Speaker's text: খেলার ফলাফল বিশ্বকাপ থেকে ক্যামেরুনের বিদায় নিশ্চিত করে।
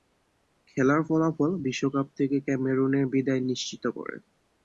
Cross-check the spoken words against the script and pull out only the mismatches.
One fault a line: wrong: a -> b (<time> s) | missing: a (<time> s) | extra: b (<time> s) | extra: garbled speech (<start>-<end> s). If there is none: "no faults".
no faults